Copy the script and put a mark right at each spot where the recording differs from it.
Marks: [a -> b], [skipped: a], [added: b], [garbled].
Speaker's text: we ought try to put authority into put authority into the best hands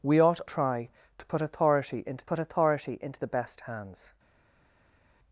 we ought try to put authority into put authority into the best hands